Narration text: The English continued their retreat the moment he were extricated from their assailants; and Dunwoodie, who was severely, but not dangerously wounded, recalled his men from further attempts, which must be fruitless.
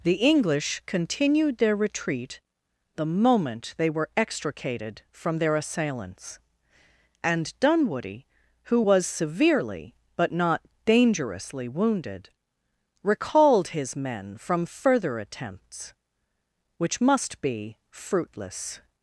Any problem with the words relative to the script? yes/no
yes